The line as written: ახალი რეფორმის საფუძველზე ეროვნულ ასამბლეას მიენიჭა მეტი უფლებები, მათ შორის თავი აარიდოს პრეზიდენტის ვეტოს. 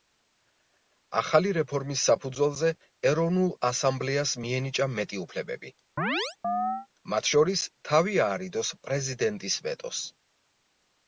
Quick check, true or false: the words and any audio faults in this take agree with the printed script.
false